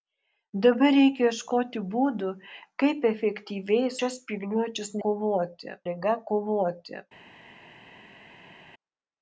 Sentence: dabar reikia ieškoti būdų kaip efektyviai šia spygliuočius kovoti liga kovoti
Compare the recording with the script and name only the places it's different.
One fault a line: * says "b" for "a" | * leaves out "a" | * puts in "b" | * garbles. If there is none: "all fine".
all fine